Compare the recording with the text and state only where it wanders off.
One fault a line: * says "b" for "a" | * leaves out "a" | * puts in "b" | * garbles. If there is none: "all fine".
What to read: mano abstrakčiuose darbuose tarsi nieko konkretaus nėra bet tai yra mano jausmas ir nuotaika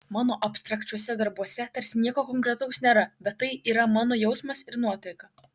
all fine